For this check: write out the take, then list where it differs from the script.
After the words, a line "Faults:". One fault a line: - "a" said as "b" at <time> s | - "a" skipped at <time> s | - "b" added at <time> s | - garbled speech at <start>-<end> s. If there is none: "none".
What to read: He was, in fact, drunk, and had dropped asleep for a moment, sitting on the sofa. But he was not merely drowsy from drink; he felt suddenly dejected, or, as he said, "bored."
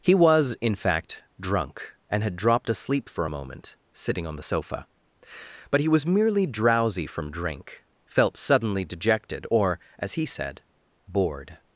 He was, in fact, drunk, and had dropped asleep for a moment, sitting on the sofa. But he was merely drowsy from drink; felt suddenly dejected, or, as he said, "bored."
Faults:
- "not" skipped at 6.1 s
- "he" skipped at 7.8 s